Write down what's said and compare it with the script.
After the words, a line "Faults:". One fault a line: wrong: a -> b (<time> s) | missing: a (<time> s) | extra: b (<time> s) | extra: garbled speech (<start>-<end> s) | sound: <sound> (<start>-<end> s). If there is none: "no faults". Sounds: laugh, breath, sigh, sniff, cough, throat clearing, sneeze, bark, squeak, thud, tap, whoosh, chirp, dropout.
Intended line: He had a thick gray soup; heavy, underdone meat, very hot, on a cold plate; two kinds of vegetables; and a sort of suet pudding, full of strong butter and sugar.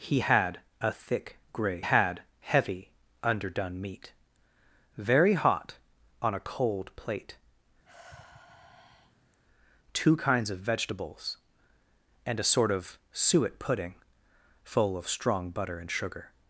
He had a thick gray had; heavy, underdone meat, very hot, on a cold plate; two kinds of vegetables; and a sort of suet pudding, full of strong butter and sugar.
Faults:
wrong: soup -> had (1.8 s)
sound: sigh (7.8-9.4 s)